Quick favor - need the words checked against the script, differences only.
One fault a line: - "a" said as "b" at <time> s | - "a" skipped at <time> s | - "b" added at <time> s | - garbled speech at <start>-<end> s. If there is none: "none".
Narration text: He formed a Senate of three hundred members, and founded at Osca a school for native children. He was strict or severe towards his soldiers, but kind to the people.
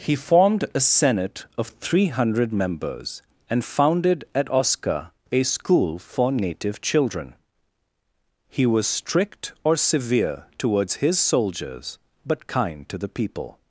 none